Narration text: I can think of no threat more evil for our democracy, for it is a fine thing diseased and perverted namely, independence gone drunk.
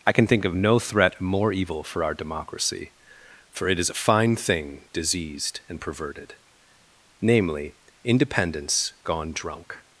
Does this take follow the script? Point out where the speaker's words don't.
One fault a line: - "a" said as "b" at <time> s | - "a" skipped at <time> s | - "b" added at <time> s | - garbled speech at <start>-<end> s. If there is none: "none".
none